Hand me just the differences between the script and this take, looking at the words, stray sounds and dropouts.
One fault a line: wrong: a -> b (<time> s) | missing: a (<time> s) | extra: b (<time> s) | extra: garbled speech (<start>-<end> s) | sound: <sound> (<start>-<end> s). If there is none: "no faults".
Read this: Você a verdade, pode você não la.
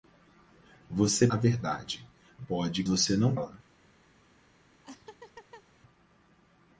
sound: laugh (4.8-5.6 s)